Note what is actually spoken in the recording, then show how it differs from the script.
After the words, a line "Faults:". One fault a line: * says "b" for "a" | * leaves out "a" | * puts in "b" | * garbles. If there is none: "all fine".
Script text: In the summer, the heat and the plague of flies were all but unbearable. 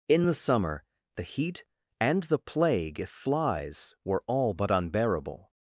In the summer, the heat and the plague if flies were all but unbearable.
Faults:
* says "if" for "of"